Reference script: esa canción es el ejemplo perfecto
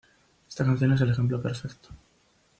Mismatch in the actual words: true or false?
true